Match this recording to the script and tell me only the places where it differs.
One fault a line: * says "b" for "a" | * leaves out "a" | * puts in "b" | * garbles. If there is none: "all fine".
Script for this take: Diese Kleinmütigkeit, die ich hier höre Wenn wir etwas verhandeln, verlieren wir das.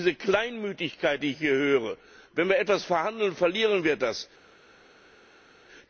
all fine